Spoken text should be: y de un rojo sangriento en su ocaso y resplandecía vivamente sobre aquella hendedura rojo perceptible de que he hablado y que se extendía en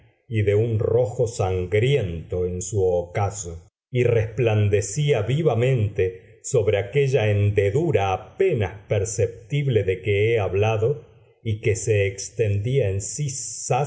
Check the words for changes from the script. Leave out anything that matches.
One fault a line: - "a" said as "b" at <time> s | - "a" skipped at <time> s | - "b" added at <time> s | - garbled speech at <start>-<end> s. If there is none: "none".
- "rojo" said as "apenas" at 8.1 s